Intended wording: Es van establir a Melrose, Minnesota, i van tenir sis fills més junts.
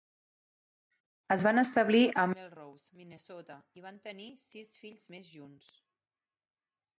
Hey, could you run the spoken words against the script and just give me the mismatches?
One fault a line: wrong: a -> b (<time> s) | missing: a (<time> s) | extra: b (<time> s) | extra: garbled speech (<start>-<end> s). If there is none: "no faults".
no faults